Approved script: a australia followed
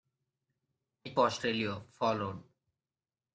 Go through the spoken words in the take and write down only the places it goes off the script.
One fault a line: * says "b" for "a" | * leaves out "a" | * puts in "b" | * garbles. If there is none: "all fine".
all fine